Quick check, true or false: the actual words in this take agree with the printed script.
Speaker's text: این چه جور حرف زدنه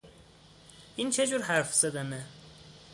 true